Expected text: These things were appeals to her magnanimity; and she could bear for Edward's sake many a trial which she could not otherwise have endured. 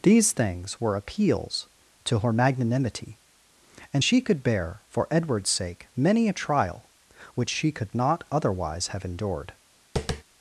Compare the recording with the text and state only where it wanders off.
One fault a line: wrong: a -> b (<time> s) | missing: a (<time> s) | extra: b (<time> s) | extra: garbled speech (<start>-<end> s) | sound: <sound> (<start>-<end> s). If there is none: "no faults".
sound: tap (10.0-10.2 s)